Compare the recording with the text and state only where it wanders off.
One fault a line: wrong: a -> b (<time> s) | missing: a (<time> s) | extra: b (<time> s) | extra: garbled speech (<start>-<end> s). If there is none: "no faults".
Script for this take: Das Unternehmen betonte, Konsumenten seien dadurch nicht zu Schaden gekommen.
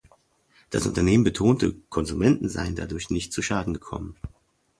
no faults